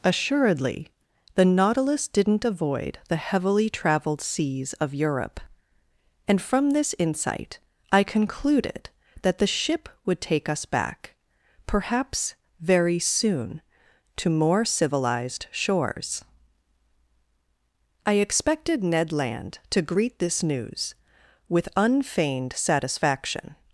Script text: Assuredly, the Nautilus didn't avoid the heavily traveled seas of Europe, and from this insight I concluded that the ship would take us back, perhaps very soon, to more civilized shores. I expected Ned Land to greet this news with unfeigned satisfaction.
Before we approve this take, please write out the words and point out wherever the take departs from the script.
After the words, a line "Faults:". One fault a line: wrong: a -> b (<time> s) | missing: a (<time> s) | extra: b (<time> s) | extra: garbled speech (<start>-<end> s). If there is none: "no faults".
Assuredly, the Nautilus didn't avoid the heavily traveled seas of Europe, and from this insight I concluded that the ship would take us back, perhaps very soon, to more civilized shores. I expected Ned Land to greet this news with unfeigned satisfaction.
Faults:
no faults